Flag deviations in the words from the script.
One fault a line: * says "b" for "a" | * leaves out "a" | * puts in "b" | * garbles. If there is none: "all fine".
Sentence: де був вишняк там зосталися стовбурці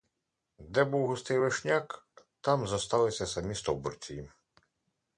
* puts in "густий"
* puts in "самі"